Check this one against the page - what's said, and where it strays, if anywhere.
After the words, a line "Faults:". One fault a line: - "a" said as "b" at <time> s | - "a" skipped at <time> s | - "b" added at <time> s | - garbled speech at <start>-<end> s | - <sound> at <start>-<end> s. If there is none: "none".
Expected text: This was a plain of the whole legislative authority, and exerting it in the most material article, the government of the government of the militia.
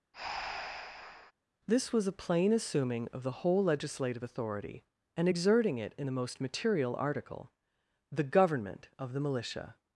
This was a plain assuming of the whole legislative authority, and exerting it in the most material article, the government of the militia.
Faults:
- breath at 0.1-1.3 s
- "assuming" added at 2.5 s
- "government of the" skipped at 9.2 s